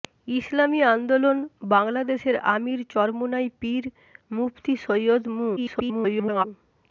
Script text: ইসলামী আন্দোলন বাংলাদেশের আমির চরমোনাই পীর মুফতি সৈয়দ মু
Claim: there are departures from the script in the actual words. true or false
true